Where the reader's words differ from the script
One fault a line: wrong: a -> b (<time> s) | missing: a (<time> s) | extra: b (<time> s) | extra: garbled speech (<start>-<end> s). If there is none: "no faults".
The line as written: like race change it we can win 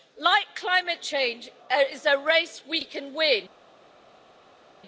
wrong: race -> climate (0.6 s)
extra: is a race (1.9 s)